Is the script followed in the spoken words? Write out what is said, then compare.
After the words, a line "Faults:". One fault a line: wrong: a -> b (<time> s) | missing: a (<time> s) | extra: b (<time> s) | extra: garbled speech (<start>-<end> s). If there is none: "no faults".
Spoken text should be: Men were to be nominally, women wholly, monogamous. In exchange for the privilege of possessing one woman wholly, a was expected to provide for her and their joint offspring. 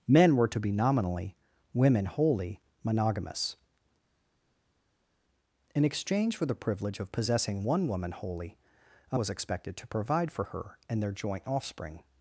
Men were to be nominally, women wholly, monogamous. In exchange for the privilege of possessing one woman wholly, a was expected to provide for her and their joint offspring.
Faults:
no faults